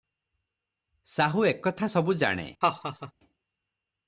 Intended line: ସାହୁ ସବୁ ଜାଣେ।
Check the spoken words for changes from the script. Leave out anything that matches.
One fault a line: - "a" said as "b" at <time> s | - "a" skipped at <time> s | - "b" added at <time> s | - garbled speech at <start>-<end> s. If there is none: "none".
- "ଏକଥା" added at 1.4 s